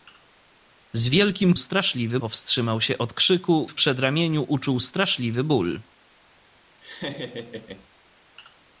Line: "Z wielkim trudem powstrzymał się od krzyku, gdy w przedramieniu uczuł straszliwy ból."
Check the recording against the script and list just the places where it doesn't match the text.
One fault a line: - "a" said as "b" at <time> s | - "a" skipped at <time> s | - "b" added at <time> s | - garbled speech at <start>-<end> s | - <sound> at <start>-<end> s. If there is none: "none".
- "trudem" said as "straszliwy" at 1.6 s
- "gdy" skipped at 3.7 s
- laugh at 6.8-7.9 s